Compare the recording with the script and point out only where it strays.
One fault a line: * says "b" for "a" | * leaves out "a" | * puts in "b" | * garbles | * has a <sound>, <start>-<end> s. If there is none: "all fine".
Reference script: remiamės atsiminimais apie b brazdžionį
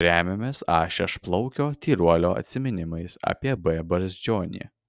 * puts in "a šešplaukio tyruolio"